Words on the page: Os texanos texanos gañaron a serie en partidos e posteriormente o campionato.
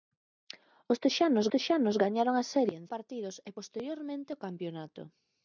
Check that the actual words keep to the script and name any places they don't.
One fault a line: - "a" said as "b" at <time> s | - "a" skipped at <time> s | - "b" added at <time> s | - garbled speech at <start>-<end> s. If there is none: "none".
none